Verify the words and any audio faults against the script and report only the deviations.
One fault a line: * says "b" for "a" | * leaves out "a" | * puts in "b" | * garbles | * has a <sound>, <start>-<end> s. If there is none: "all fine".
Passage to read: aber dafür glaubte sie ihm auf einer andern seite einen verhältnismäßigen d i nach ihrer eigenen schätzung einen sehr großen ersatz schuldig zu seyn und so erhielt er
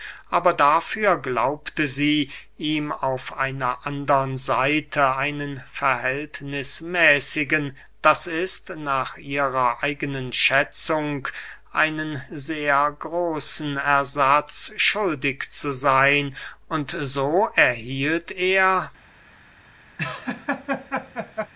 * has a laugh, 20.0-21.5 s